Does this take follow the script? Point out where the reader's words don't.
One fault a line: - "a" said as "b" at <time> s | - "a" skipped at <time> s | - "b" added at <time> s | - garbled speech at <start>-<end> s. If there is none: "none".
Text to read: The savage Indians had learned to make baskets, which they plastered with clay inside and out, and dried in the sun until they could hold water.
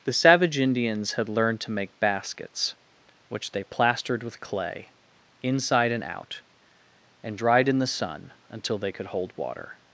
none